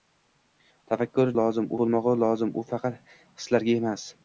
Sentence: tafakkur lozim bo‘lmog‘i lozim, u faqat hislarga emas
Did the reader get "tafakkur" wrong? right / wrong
right